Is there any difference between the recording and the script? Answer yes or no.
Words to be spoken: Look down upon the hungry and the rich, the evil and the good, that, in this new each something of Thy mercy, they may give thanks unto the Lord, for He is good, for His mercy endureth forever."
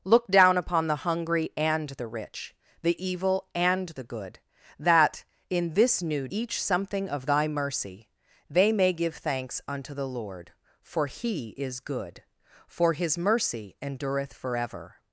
no